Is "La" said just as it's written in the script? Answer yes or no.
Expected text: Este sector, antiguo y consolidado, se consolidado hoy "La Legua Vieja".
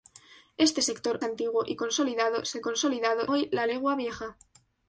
yes